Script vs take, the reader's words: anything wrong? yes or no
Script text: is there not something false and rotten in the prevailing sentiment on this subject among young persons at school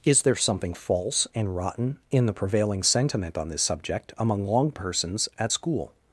yes